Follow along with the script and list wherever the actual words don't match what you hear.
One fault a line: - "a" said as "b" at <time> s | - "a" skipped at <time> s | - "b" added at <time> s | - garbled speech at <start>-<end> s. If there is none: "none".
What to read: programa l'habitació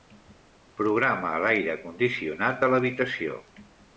- "l'aire condicionat de" added at 1.4 s